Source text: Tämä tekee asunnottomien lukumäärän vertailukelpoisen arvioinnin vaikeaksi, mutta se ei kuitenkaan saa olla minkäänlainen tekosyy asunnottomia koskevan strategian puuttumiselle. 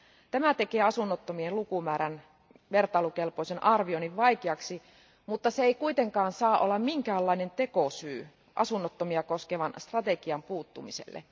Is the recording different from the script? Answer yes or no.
no